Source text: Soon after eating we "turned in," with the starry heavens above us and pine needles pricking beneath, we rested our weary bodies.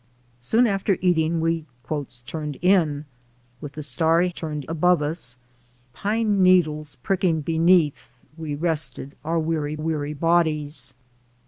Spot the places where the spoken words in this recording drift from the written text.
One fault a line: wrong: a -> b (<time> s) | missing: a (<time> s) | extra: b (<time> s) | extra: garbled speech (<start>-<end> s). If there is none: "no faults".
wrong: heavens -> turned (4.3 s)
missing: and (5.4 s)
extra: weary (9.8 s)